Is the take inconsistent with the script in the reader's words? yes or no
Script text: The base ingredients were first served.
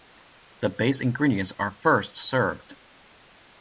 yes